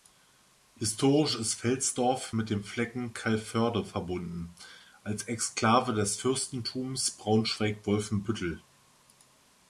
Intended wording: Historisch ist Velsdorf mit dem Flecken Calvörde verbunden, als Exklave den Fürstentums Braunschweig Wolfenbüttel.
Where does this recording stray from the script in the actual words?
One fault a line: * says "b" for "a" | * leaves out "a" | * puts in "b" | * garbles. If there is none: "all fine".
* says "des" for "den"